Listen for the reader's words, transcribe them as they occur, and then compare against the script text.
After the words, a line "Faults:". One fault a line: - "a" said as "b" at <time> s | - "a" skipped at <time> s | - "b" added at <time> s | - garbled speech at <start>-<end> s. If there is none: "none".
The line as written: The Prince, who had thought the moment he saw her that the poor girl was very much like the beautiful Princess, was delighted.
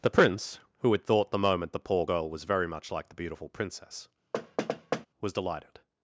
The Prince, who had thought the moment the poor girl was very much like the beautiful Princess, was delighted.
Faults:
- "he saw her that" skipped at 1.8 s